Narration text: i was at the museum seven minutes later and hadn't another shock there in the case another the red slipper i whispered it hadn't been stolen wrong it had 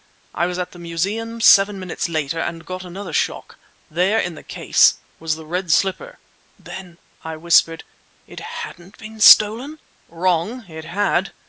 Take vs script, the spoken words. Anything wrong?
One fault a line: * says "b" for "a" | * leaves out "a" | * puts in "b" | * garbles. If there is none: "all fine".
* says "got" for "hadn't"
* says "was" for "another"
* puts in "then"